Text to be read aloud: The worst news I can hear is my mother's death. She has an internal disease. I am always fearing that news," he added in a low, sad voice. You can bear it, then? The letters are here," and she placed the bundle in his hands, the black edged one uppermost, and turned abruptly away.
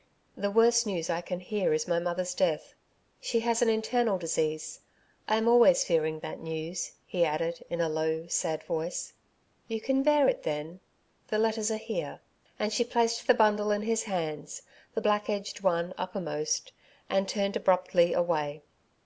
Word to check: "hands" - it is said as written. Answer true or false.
true